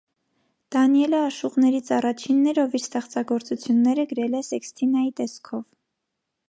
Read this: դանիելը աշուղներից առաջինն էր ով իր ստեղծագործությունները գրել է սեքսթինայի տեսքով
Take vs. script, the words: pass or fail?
pass